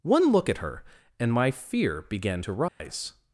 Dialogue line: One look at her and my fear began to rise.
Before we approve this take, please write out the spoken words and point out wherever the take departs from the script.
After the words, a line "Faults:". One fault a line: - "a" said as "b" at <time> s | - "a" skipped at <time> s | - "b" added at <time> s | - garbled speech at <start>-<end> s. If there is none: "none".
One look at her and my fear began to rise.
Faults:
none